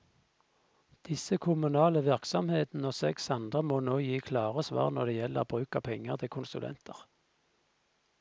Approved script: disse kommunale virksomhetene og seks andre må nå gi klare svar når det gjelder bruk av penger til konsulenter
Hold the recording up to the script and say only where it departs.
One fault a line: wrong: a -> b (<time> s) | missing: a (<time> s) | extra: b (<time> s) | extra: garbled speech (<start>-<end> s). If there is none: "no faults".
no faults